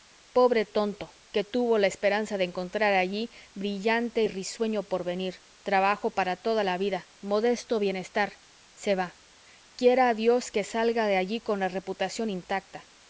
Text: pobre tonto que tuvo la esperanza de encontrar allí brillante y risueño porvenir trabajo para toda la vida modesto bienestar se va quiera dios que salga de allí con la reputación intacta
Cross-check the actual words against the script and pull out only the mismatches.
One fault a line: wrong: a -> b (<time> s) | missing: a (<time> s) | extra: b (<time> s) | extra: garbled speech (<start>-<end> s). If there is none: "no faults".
no faults